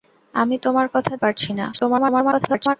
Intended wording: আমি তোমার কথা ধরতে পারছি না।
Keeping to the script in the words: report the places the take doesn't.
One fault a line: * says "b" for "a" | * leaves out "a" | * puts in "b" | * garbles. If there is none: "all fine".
* leaves out "ধরতে"
* garbles